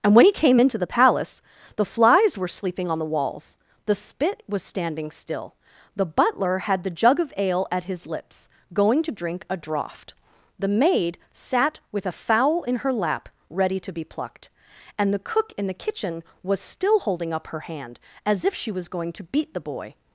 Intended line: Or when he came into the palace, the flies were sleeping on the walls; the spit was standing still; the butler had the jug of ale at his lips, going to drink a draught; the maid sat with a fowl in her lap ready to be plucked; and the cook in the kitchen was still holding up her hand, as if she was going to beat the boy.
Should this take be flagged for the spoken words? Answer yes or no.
yes